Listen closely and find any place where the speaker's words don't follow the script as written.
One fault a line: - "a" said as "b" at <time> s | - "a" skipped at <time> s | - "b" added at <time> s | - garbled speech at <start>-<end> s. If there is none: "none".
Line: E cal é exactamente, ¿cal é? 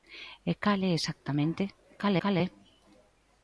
- "cal" added at 2.2 s